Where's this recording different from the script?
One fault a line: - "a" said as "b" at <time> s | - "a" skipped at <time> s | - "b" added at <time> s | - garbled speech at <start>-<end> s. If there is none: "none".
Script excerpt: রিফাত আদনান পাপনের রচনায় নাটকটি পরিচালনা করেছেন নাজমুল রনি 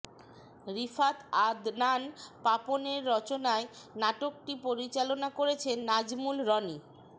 none